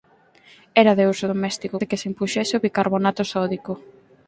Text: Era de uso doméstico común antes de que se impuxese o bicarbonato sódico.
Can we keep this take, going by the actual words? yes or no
no